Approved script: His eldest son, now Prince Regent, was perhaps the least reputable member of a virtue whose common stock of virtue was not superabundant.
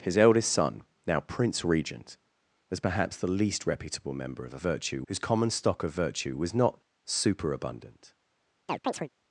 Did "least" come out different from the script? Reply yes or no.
no